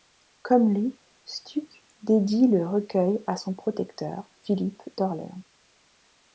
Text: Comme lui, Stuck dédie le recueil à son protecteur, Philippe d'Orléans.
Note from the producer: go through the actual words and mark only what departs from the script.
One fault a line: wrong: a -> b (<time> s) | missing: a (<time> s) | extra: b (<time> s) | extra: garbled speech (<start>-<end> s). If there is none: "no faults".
no faults